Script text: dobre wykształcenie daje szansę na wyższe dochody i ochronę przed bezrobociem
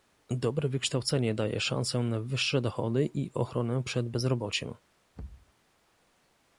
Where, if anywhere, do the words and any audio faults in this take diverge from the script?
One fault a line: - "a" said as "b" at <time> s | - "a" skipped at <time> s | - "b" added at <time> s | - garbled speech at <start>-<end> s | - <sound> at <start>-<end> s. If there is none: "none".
- thud at 5.2-5.5 s